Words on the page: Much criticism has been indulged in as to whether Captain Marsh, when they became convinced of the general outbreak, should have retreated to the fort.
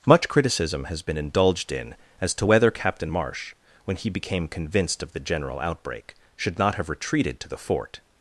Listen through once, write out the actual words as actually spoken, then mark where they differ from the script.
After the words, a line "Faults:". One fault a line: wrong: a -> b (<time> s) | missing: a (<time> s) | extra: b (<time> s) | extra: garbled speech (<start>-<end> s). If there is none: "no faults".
Much criticism has been indulged in as to whether Captain Marsh, when he became convinced of the general outbreak, should not have retreated to the fort.
Faults:
wrong: they -> he (4.0 s)
extra: not (6.6 s)